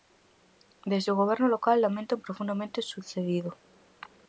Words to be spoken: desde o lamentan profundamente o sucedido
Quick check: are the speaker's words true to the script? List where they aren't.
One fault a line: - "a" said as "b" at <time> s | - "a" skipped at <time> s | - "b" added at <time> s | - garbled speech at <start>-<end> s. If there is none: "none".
- "goberno local" added at 1.2 s